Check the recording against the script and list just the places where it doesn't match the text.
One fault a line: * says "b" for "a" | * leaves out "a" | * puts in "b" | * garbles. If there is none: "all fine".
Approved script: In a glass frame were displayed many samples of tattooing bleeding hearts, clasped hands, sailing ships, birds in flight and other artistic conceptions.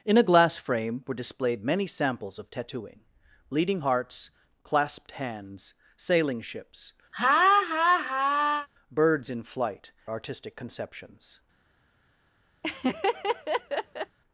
* leaves out "and other"